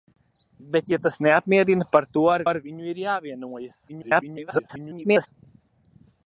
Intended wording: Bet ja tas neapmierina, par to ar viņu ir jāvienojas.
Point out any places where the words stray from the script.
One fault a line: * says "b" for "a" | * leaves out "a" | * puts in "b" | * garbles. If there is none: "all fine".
* puts in "ar"
* garbles